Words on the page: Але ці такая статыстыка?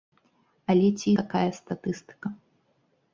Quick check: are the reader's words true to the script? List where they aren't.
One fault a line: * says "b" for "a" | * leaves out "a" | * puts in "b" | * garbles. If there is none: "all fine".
all fine